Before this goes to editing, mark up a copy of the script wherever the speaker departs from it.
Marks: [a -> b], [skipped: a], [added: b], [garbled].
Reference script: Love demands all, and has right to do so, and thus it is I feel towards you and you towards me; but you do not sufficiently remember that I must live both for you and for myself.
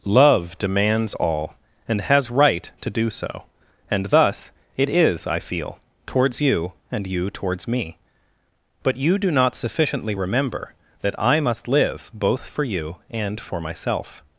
Love demands all, and has right to do so, and thus it is I feel towards you and you towards me; but you do not sufficiently remember that I must live both for you and for myself.